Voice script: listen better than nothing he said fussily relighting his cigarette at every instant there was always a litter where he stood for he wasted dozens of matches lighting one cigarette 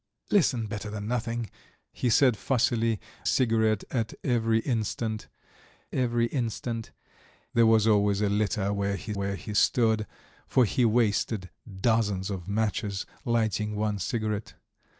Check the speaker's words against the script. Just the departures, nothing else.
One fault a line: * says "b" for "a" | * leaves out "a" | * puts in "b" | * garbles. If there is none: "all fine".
* leaves out "relighting his"
* puts in "every instant"
* puts in "where he"